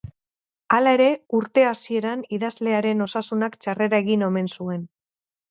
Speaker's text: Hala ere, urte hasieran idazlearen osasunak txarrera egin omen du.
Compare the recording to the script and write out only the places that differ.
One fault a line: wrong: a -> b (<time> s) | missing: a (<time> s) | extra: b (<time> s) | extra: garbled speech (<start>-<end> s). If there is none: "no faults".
wrong: du -> zuen (4.6 s)